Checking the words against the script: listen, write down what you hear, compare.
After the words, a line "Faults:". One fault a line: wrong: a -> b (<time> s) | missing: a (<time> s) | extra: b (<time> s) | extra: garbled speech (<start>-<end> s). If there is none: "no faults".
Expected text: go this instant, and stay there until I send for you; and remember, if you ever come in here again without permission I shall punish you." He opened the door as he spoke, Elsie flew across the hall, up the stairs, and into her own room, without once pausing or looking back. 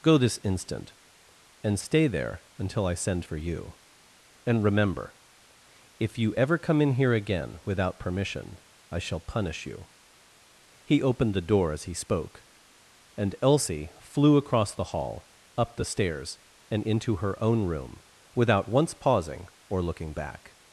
go this instant, and stay there until I send for you; and remember, if you ever come in here again without permission I shall punish you." He opened the door as he spoke, and Elsie flew across the hall, up the stairs, and into her own room, without once pausing or looking back.
Faults:
extra: and (13.2 s)